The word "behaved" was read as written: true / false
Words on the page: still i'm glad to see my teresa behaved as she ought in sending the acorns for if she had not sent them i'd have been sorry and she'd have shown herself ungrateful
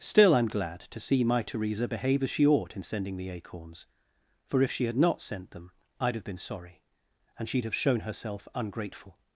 false